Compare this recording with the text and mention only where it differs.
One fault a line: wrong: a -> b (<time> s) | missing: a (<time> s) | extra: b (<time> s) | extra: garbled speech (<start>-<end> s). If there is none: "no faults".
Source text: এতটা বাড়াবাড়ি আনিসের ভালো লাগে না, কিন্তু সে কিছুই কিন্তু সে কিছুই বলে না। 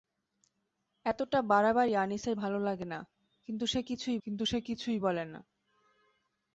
no faults